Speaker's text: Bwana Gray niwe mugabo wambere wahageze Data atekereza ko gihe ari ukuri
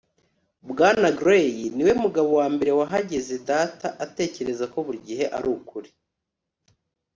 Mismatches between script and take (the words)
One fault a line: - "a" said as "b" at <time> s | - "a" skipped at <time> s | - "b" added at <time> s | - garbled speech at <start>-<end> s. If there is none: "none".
- "buri" added at 4.9 s